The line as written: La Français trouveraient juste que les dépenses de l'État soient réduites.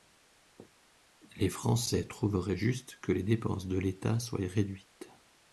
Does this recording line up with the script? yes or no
no